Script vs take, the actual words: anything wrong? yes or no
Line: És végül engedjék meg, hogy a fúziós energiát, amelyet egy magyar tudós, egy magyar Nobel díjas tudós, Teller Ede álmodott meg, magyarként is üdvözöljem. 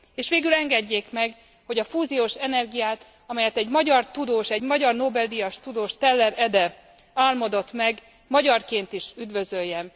no